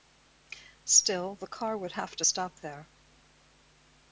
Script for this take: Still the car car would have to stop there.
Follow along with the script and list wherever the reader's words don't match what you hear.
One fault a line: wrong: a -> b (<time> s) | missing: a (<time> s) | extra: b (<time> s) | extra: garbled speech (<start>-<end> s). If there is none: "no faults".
missing: car (1.8 s)